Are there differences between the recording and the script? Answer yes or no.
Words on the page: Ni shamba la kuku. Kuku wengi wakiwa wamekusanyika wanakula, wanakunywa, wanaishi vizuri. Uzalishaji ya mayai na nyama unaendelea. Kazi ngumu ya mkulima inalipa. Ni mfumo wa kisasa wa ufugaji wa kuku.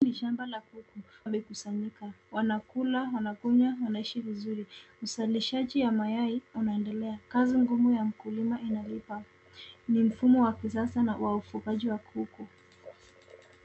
yes